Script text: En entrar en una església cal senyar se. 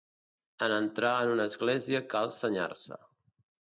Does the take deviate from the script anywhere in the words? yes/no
no